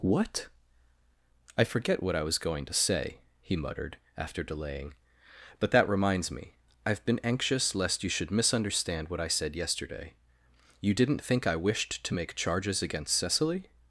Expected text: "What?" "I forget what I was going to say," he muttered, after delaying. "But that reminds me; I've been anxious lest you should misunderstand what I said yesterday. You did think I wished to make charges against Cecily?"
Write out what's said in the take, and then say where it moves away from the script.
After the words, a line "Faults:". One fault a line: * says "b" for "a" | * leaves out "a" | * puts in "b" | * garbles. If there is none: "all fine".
"What?" "I forget what I was going to say," he muttered, after delaying. "But that reminds me; I've been anxious lest you should misunderstand what I said yesterday. You didn't think I wished to make charges against Cecily?"
Faults:
* says "didn't" for "did"